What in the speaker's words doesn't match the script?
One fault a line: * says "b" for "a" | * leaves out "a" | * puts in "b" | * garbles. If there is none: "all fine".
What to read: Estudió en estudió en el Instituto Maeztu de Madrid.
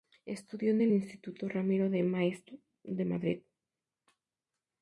* says "el Instituto Ramiro de" for "estudió en el Instituto"